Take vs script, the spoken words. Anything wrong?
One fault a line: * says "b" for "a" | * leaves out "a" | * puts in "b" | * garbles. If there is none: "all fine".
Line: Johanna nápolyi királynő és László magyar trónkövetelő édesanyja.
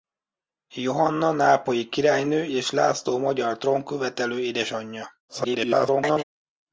* garbles